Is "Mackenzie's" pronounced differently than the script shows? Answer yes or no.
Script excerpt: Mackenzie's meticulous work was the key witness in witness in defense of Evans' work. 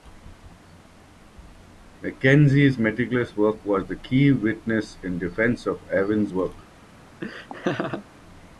no